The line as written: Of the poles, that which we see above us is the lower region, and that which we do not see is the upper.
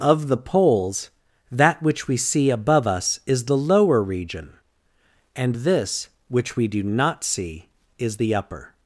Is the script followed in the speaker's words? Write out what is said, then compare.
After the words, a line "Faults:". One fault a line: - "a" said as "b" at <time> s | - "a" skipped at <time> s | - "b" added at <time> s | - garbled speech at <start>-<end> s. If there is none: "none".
Of the poles, that which we see above us is the lower region, and this which we do not see is the upper.
Faults:
- "that" said as "this" at 5.5 s